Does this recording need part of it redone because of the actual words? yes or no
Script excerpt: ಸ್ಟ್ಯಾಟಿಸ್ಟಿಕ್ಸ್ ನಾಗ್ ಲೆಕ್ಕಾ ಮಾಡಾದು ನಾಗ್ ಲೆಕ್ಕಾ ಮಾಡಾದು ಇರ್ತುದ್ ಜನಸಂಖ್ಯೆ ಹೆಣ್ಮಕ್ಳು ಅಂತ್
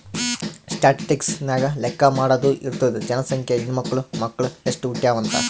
yes